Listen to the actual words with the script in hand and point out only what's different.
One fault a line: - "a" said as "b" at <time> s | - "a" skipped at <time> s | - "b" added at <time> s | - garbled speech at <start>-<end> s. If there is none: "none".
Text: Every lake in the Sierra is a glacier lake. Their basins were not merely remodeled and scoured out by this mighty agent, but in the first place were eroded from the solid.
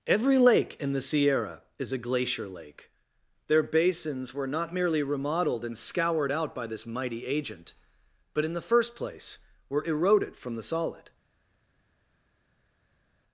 none